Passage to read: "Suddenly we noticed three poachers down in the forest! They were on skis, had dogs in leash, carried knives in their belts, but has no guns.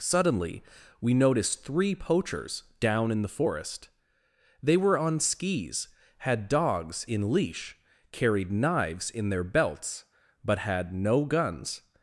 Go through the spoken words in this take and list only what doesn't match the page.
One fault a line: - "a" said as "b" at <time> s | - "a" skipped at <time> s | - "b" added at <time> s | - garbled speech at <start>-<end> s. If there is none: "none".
- "has" said as "had" at 10.6 s